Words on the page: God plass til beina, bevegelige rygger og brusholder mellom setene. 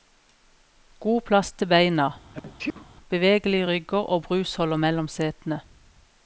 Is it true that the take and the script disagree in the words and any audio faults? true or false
true